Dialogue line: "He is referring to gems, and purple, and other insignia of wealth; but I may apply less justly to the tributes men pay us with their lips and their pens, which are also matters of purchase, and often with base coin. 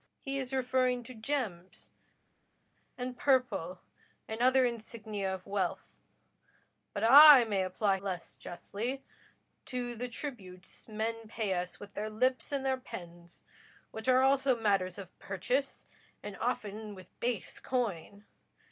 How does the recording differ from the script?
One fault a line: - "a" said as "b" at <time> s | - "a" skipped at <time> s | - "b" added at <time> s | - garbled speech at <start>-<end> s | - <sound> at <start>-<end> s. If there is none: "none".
none